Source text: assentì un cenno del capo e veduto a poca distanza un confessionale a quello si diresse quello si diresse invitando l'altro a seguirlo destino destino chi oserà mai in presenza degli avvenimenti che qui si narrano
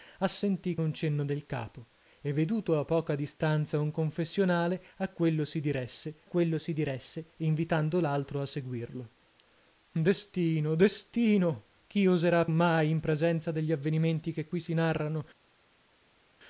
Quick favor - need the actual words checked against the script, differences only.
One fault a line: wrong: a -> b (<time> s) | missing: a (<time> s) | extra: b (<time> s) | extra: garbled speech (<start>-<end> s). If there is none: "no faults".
no faults